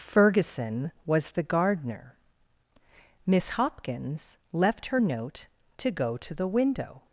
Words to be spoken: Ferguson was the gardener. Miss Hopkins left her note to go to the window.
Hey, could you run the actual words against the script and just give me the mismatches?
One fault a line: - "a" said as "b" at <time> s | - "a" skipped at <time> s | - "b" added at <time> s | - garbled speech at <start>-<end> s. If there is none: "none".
none